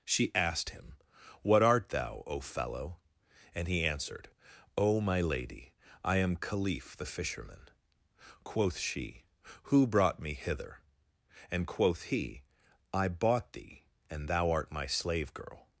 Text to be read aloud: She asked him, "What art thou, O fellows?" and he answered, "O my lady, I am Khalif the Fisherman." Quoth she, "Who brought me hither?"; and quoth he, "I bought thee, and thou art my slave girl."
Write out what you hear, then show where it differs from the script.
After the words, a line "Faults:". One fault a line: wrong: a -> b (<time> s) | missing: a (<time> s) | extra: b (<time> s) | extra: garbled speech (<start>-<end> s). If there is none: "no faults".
She asked him, "What art thou, O fellow?" and he answered, "O my lady, I am Khalif the Fisherman." Quoth she, "Who brought me hither?"; and quoth he, "I bought thee, and thou art my slave girl."
Faults:
wrong: fellows -> fellow (2.4 s)